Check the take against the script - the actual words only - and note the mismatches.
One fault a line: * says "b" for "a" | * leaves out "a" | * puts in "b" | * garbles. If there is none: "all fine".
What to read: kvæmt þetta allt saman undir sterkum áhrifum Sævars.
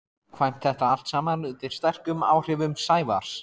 all fine